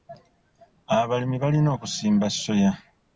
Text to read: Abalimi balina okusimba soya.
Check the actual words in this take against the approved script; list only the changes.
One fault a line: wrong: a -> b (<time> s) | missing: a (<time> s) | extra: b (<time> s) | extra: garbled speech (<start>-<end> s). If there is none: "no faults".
no faults